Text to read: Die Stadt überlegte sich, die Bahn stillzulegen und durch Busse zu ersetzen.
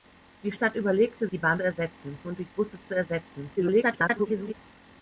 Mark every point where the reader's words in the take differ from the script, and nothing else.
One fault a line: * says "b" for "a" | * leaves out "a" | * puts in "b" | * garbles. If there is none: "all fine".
* leaves out "sich"
* says "ersetzen" for "stillzulegen"
* garbles